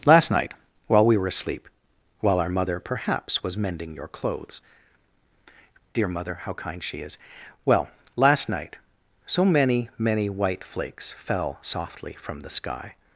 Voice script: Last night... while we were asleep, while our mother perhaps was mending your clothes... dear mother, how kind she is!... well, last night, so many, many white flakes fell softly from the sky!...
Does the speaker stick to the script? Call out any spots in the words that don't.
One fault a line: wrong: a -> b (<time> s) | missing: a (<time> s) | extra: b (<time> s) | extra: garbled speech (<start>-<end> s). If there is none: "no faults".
no faults